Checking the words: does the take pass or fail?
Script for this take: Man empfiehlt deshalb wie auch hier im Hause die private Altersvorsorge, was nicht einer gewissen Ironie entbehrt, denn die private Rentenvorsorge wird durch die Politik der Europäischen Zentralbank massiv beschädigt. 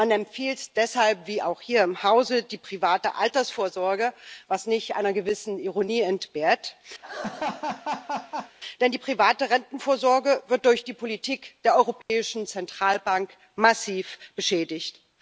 pass